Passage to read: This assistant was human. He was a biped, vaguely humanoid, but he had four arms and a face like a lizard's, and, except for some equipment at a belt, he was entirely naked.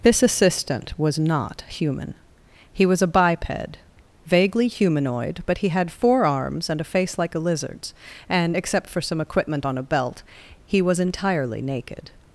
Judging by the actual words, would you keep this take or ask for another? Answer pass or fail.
fail